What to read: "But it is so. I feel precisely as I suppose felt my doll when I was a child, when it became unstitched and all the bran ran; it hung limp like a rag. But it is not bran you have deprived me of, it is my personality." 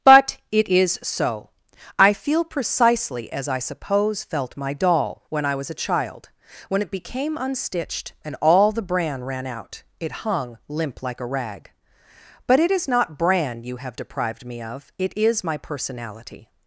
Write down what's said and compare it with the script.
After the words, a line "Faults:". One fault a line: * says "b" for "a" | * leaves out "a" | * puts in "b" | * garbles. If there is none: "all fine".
"But it is so. I feel precisely as I suppose felt my doll when I was a child, when it became unstitched and all the bran ran out; it hung limp like a rag. But it is not bran you have deprived me of, it is my personality."
Faults:
* puts in "out"